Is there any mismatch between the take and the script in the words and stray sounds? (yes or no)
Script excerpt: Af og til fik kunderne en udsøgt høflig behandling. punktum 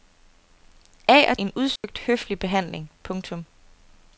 yes